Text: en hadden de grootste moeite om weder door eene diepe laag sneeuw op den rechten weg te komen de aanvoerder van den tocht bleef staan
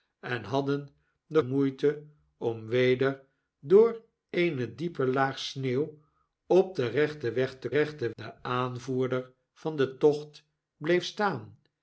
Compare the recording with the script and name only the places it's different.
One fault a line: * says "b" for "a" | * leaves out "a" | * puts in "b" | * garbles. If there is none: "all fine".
* leaves out "grootste"
* says "rechten" for "komen"